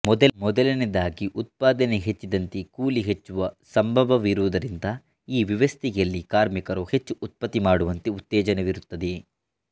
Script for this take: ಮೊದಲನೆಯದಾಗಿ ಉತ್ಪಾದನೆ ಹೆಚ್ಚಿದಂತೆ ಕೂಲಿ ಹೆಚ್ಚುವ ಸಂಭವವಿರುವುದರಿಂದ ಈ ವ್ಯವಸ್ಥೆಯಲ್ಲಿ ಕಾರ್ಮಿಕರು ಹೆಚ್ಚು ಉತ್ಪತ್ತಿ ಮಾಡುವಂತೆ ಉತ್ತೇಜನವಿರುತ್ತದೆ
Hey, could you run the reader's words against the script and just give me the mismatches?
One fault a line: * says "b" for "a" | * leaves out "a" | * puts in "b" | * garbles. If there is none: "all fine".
all fine